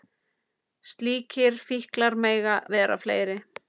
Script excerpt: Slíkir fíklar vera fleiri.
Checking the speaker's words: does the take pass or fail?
fail